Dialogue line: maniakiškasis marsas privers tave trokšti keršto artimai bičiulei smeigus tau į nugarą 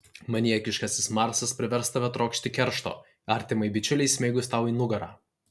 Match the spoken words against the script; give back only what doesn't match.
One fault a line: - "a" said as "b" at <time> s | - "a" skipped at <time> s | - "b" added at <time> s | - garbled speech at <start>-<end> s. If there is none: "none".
none